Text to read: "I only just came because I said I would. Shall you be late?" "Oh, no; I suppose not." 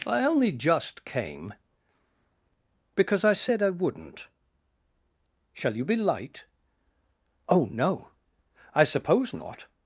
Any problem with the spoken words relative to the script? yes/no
yes